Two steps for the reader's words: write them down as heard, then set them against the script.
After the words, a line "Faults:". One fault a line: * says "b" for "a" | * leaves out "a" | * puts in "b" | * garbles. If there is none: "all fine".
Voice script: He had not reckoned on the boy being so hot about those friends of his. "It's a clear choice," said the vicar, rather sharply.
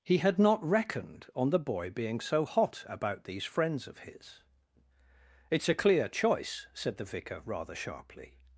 He had not reckoned on the boy being so hot about these friends of his. "It's a clear choice," said the vicar, rather sharply.
Faults:
* says "these" for "those"